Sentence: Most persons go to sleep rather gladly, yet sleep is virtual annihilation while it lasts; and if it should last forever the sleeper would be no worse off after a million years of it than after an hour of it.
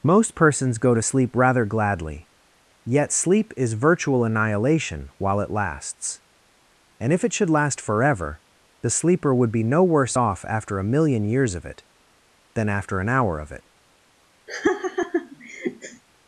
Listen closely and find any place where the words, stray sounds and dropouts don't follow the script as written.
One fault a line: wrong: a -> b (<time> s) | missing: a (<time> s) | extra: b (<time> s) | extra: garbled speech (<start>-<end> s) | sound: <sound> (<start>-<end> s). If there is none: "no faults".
sound: laugh (14.5-16.0 s)